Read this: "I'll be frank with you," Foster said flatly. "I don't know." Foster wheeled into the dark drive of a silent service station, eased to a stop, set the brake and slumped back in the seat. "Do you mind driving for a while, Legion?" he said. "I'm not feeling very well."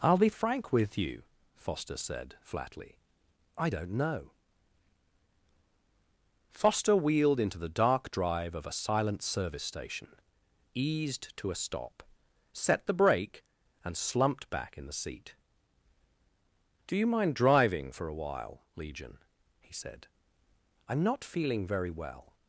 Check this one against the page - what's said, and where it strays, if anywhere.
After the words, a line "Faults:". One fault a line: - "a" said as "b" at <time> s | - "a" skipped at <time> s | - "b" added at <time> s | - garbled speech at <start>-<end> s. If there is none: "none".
"I'll be frank with you," Foster said flatly. "I don't know." Foster wheeled into the dark drive of a silent service station, eased to a stop, set the brake and slumped back in the seat. "Do you mind driving for a while, Legion?" he said. "I'm not feeling very well."
Faults:
none